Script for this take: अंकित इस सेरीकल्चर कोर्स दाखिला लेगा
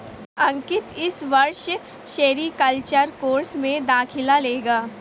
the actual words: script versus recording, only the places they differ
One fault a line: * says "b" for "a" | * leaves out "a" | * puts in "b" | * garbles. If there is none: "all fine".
* puts in "वर्ष"
* puts in "में"